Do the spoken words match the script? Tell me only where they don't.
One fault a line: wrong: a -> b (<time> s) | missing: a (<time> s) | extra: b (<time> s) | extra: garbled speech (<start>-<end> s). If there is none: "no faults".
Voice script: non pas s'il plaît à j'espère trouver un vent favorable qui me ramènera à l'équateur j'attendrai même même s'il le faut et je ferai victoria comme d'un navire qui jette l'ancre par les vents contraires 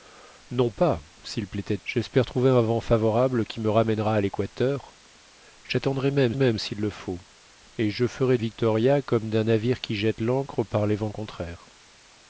no faults